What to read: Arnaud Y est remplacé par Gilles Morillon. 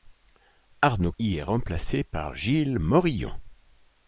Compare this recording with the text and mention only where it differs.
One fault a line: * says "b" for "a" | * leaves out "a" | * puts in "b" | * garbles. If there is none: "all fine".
all fine